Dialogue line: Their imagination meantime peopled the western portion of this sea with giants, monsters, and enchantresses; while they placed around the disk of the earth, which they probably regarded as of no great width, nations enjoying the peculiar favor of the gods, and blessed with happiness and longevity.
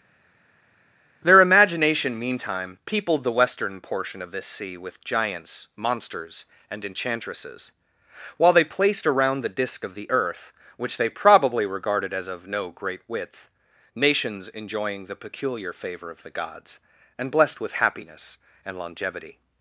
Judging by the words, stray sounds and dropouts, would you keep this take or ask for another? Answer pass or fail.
pass